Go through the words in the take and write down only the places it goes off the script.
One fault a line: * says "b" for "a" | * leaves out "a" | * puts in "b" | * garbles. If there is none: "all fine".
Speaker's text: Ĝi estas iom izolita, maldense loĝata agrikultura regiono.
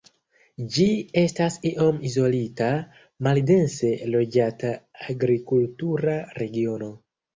all fine